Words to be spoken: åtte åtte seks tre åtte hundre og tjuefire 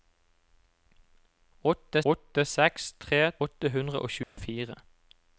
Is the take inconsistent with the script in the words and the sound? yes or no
yes